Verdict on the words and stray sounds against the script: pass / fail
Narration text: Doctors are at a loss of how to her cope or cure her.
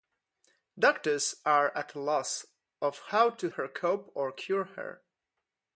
pass